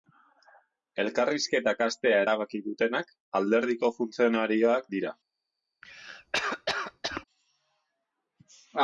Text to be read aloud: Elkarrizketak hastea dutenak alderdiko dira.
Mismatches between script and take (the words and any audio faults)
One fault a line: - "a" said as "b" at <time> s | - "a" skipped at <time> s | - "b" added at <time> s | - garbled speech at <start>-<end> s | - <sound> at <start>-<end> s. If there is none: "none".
- "erabaki" added at 2.2 s
- "funtzionarioak" added at 4.0 s
- cough at 5.8-7.2 s